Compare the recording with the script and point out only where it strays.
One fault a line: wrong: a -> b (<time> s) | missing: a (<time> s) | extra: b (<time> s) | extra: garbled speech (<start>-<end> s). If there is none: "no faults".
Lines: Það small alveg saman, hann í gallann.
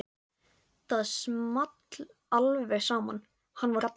no faults